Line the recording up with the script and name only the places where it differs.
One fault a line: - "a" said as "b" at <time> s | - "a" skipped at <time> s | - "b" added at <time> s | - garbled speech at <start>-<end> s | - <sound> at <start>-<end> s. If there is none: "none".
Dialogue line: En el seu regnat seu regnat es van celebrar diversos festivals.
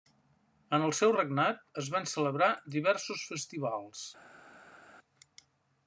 - "seu regnat" skipped at 1.6 s